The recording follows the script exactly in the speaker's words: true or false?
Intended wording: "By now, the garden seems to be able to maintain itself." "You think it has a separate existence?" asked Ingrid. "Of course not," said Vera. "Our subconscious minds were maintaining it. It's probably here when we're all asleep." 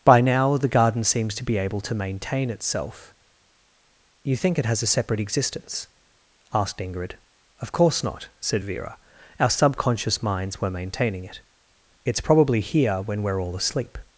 true